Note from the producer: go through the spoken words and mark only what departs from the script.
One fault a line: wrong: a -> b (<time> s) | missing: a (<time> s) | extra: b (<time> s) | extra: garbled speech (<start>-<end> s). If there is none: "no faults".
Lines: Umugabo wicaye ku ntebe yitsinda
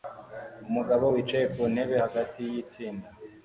extra: hagati (2.0 s)